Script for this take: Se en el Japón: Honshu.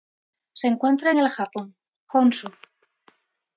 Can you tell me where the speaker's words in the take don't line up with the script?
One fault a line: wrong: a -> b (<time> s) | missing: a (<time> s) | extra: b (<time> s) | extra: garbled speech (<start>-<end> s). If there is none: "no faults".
extra: encuentra (0.7 s)